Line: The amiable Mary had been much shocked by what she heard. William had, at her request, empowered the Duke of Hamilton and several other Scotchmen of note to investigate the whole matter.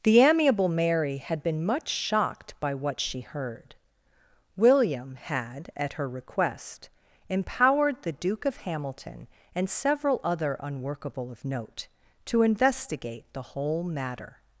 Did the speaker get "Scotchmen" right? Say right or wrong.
wrong